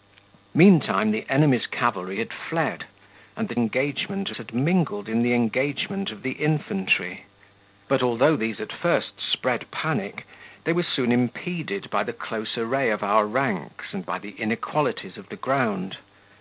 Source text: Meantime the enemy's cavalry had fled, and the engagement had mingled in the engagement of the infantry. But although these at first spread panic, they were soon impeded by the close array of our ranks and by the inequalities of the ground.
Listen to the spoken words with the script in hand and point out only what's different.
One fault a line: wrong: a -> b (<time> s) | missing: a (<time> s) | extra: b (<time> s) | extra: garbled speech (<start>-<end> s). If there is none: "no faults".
no faults